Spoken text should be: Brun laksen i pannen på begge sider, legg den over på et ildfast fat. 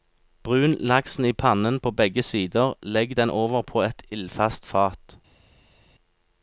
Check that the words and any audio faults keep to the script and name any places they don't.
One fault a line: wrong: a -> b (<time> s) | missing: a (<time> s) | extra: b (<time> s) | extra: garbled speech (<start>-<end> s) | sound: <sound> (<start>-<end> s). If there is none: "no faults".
no faults